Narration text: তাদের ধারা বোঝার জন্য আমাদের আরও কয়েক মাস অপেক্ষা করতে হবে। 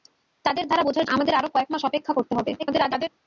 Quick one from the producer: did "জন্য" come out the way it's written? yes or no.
no